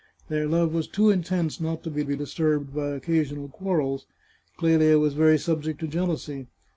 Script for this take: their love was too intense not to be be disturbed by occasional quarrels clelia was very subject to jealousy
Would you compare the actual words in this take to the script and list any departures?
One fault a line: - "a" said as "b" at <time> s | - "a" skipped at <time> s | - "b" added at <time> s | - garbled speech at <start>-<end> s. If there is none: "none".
none